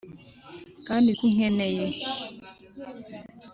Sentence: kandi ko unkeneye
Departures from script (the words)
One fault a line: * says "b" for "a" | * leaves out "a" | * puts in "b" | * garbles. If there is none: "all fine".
all fine